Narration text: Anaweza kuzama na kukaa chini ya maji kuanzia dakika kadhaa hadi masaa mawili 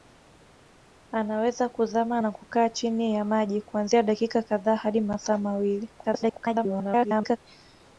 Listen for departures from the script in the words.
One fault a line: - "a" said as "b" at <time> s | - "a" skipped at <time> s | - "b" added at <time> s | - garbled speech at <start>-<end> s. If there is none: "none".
- garbled speech at 6.0-7.4 s